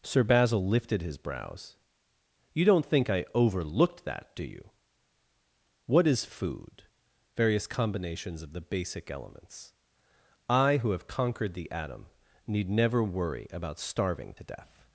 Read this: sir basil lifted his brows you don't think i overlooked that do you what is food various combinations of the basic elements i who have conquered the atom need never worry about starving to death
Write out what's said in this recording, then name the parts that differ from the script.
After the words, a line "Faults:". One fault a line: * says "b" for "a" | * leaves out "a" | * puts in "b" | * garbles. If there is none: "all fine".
sir basil lifted his brows you don't think i overlooked that do you what is food various combinations of the basic elements i who have conquered the atom need never worry about starving to death
Faults:
all fine